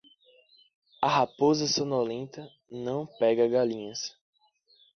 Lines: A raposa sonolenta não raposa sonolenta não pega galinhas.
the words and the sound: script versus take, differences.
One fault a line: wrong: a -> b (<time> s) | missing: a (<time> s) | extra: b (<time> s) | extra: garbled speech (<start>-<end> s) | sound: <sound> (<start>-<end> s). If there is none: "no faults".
missing: raposa sonolenta não (3.0 s)